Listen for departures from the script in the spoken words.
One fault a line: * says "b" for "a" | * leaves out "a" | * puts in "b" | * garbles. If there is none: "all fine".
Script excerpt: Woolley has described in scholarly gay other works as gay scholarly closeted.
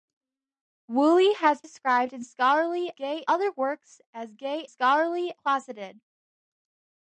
all fine